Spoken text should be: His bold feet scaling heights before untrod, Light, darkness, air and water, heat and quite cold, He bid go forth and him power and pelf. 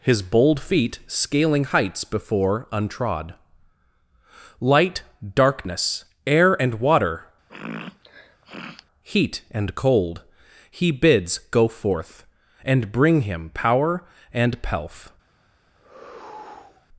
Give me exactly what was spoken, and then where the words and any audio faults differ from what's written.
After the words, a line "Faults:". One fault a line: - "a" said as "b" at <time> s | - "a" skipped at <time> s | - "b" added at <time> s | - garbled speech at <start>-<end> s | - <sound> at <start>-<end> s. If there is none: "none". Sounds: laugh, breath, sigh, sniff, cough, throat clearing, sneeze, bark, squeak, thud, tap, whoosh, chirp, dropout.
His bold feet scaling heights before untrod, Light, darkness, air and water, heat and cold, He bids go forth and bring him power and pelf.
Faults:
- sniff at 7.5-8.9 s
- "quite" skipped at 9.7 s
- "bid" said as "bids" at 10.9 s
- "bring" added at 12.9 s
- sigh at 15.8-16.9 s